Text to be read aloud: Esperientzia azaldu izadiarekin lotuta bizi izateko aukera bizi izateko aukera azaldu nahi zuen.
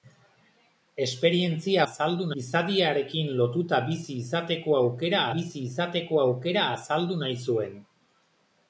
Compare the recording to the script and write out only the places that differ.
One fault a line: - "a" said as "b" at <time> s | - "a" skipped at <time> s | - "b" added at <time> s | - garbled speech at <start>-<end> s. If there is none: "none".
none